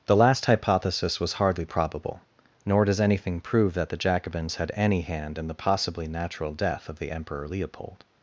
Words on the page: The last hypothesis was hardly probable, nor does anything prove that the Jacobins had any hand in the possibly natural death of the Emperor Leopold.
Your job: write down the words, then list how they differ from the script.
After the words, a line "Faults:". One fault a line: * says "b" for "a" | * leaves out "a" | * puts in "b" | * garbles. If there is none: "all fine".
The last hypothesis was hardly probable, nor does anything prove that the Jacobins had any hand in the possibly natural death of the Emperor Leopold.
Faults:
all fine